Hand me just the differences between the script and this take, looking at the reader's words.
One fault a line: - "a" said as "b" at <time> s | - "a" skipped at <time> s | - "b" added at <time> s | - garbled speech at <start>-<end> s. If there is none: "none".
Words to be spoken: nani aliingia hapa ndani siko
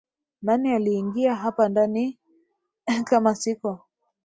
- "kama" added at 3.1 s